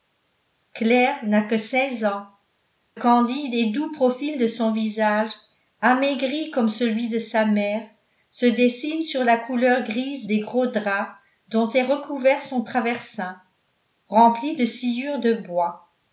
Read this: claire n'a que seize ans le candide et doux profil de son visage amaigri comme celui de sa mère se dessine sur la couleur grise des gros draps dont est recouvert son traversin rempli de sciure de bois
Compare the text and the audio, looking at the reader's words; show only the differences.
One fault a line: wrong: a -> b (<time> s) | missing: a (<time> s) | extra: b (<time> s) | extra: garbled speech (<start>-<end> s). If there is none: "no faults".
missing: le (2.2 s)